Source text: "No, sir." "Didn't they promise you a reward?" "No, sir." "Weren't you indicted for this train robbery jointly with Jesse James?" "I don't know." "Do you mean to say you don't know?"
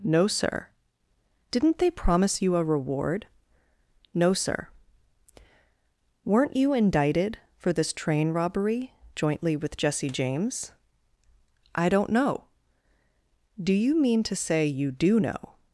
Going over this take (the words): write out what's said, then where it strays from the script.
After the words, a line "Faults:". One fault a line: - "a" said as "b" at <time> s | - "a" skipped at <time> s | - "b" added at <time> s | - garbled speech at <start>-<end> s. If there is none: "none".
"No, sir." "Didn't they promise you a reward?" "No, sir." "Weren't you indicted for this train robbery jointly with Jesse James?" "I don't know." "Do you mean to say you do know?"
Faults:
- "don't" said as "do" at 14.9 s